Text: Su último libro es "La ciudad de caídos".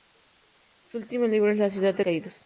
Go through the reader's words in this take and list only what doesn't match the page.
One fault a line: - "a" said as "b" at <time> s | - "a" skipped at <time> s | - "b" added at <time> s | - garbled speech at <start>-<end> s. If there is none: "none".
none